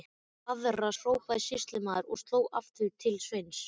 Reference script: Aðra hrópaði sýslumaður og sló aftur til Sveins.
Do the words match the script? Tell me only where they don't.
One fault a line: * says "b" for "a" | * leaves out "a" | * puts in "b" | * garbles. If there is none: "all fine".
all fine